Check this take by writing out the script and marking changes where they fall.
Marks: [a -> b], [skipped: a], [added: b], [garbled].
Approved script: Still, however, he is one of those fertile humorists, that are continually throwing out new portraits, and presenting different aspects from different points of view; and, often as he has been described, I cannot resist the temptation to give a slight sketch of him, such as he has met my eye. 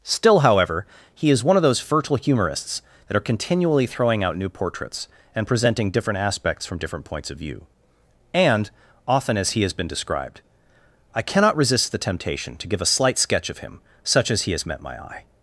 Still, however, he is one of those fertile humorists, that are continually throwing out new portraits, and presenting different aspects from different points of view; and, often as he has been described, I cannot resist the temptation to give a slight sketch of him, such as he has met my eye.